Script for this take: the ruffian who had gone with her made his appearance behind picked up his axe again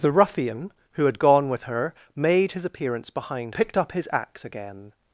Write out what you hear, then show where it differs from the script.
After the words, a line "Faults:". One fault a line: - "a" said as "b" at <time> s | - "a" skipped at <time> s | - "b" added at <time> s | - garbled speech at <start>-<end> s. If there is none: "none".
the ruffian who had gone with her made his appearance behind picked up his axe again
Faults:
none